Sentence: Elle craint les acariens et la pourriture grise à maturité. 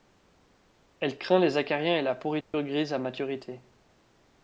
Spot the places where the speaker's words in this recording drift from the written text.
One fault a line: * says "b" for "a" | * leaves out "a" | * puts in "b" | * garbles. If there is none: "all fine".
all fine